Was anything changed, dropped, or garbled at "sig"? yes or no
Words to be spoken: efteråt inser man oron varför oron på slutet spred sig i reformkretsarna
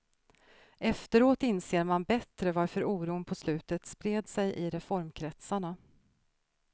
no